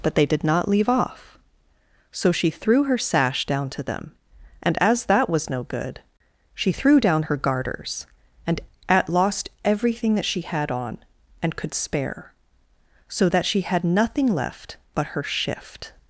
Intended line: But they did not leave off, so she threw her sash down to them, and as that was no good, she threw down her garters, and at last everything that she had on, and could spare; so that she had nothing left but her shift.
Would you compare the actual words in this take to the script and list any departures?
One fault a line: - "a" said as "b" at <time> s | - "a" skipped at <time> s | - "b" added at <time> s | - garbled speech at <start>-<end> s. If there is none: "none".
- "last" said as "lost" at 9.1 s